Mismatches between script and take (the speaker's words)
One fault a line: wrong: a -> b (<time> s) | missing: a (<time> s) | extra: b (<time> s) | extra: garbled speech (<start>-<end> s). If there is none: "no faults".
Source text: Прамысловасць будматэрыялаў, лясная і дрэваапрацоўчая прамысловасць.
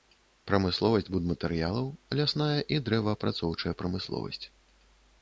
no faults